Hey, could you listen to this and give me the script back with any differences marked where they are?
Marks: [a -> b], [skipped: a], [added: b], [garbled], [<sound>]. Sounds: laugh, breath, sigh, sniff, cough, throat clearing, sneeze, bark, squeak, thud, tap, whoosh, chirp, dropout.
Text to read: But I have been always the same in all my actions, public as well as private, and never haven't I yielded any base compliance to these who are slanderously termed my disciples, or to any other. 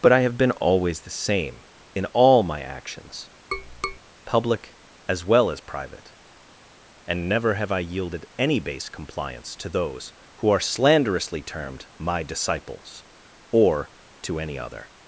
But I have been always the same in all my actions, [tap] public as well as private, and never [haven't -> have] I yielded any base compliance to [these -> those] who are slanderously termed my disciples, or to any other.